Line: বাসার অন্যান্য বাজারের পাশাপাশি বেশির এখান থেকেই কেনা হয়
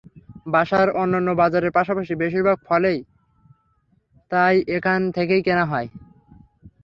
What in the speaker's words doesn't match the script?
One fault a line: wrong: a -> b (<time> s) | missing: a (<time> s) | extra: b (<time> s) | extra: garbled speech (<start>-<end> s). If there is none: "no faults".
extra: ভাগ ফলই তাই (2.4 s)